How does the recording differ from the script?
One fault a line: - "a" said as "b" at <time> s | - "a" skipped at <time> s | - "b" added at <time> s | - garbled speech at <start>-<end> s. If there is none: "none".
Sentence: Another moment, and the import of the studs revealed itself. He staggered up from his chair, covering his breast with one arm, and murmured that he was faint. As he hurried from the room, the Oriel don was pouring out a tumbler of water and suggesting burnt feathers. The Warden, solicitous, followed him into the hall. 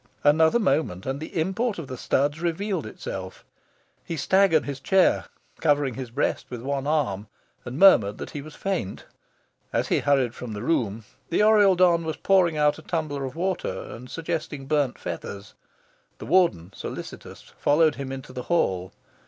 - "up from" skipped at 4.7 s